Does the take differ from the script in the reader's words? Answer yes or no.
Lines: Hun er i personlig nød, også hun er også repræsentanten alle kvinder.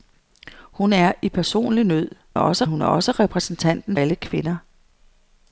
no